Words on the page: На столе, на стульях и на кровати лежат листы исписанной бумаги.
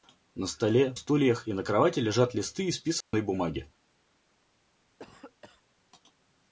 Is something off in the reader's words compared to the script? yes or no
yes